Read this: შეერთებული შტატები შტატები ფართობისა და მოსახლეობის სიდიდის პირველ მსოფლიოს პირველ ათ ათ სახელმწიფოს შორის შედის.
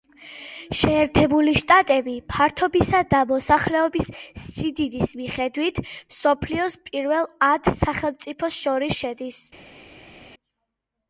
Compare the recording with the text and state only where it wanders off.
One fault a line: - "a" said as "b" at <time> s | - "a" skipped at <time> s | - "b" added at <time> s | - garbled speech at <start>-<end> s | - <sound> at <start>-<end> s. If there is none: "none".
- "შტატები" skipped at 2.1 s
- "პირველ" said as "მიხედვით" at 5.2 s
- "ათ" skipped at 7.7 s